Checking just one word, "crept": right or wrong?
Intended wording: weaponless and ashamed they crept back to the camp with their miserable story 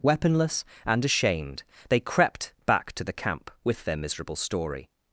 right